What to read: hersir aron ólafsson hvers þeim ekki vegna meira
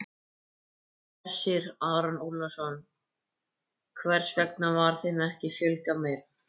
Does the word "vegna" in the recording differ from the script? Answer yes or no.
yes